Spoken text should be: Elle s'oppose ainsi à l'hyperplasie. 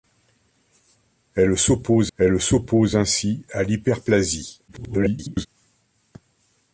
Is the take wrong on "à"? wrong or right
right